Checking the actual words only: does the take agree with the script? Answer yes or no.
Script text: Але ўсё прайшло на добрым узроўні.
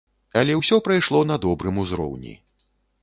yes